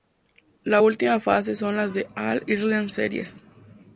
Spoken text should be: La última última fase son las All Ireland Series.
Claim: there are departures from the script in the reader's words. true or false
true